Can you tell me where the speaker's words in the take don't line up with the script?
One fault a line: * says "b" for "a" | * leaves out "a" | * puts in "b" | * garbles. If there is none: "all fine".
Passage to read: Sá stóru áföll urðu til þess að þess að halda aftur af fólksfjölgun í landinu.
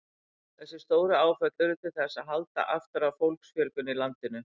* says "Þessi" for "Sá"
* leaves out "þess að"